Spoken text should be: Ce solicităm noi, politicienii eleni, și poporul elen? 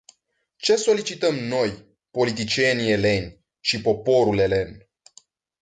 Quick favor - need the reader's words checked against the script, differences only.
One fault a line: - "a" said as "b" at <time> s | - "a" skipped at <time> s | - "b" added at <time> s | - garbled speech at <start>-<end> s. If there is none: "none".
none